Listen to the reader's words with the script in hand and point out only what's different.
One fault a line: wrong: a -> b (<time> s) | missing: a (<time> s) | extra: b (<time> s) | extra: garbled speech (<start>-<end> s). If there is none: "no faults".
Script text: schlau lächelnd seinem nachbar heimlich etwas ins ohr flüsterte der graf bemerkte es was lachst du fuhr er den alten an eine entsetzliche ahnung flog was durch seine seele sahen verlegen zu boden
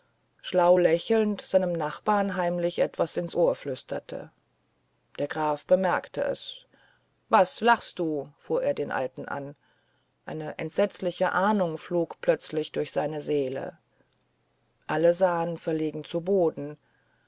wrong: was -> plötzlich (12.2 s)
extra: alle (14.9 s)